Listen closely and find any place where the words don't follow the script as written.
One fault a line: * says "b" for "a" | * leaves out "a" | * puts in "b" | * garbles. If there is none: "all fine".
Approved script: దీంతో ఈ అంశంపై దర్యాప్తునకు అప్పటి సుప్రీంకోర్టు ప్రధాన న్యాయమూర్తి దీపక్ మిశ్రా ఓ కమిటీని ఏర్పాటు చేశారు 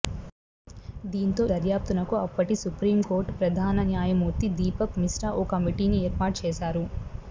* leaves out "ఈ అంశంపై"